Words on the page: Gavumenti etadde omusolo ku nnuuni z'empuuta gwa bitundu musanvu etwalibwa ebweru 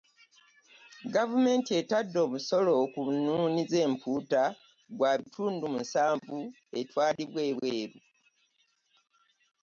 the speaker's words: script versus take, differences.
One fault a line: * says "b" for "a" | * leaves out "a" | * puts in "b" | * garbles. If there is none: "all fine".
all fine